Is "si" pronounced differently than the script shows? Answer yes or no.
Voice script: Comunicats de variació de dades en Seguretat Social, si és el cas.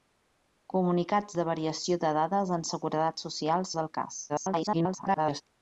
yes